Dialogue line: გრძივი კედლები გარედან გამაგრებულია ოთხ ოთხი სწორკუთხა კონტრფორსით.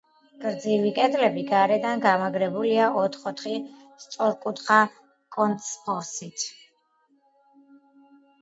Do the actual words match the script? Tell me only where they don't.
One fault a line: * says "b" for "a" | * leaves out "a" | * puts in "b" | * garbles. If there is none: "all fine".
all fine